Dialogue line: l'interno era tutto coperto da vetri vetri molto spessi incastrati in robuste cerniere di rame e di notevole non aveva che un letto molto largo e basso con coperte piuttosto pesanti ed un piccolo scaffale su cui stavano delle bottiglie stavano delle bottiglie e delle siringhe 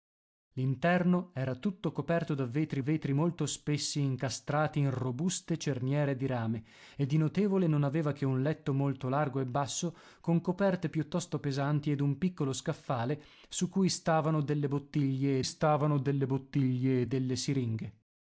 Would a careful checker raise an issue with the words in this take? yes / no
no